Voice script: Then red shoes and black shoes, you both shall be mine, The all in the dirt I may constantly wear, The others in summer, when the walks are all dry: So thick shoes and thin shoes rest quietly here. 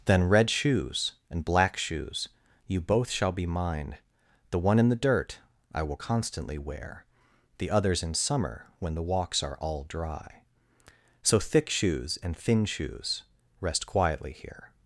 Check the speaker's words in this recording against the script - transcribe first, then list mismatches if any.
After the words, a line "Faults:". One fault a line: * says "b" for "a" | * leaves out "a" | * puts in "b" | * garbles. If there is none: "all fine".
Then red shoes and black shoes, you both shall be mine, The one in the dirt I will constantly wear, The others in summer, when the walks are all dry: So thick shoes and thin shoes rest quietly here.
Faults:
* says "one" for "all"
* says "will" for "may"